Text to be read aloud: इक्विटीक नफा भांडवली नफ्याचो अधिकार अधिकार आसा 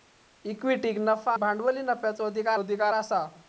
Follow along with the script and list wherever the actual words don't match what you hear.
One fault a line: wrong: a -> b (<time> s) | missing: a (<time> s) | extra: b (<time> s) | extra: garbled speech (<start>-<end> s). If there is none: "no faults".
no faults